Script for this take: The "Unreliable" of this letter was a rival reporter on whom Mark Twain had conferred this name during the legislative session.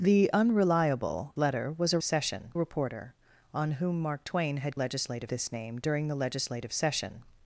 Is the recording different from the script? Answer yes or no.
yes